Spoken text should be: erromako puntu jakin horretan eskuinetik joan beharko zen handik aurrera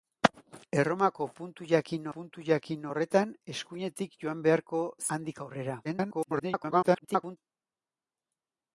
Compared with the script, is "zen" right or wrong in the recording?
wrong